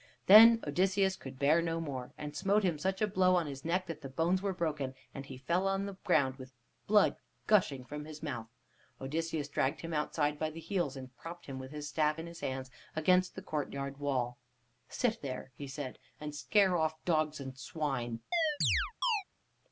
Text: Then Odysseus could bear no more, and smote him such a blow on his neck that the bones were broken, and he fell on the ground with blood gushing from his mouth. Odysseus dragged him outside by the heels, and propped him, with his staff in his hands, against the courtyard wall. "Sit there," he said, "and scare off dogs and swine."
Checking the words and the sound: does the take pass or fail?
fail